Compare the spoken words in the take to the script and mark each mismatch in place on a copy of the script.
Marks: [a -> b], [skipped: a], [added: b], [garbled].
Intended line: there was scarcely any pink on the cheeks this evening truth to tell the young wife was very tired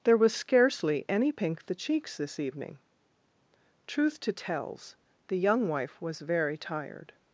there was scarcely any pink [skipped: on] the cheeks this evening truth to [tell -> tells] the young wife was very tired